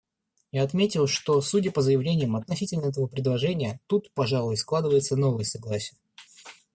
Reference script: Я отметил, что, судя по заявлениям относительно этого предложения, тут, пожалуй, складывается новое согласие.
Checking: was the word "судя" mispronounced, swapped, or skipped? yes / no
no